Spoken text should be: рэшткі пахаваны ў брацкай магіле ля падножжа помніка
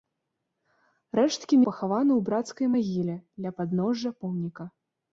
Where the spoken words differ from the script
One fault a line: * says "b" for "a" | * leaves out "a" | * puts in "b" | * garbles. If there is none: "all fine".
all fine